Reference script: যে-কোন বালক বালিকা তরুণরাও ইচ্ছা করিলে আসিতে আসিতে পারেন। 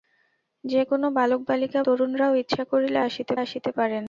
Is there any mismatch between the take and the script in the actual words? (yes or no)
no